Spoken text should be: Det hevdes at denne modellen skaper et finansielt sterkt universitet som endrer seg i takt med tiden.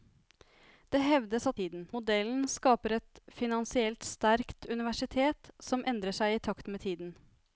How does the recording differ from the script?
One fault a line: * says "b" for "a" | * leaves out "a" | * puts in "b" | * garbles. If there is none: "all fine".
* says "tiden" for "denne"